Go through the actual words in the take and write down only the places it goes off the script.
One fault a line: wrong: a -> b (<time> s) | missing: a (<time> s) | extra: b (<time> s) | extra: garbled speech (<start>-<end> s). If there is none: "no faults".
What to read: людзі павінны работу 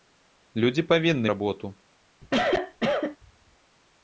no faults